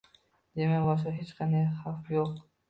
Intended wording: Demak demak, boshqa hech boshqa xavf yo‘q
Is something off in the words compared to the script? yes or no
yes